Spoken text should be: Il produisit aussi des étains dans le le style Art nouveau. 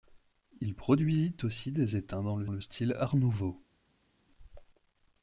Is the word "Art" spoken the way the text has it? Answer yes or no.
yes